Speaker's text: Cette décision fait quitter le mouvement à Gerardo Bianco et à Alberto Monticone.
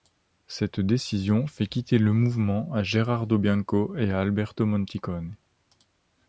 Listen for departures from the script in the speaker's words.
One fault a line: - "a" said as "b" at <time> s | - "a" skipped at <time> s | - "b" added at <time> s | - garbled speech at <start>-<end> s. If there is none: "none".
none